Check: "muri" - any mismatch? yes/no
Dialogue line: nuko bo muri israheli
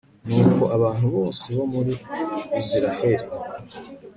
no